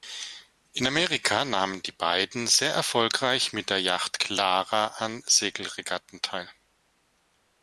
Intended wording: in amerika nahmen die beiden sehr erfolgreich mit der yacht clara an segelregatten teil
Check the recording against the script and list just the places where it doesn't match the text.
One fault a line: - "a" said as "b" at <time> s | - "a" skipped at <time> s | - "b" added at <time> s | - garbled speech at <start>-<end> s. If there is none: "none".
none